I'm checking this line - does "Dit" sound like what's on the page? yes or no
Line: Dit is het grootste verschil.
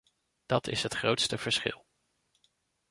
no